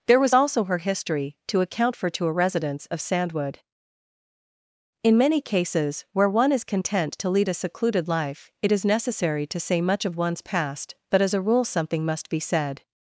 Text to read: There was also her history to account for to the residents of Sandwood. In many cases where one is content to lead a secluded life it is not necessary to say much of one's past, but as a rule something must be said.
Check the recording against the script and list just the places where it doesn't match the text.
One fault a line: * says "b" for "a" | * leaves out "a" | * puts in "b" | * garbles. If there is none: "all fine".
* says "a" for "the"
* leaves out "not"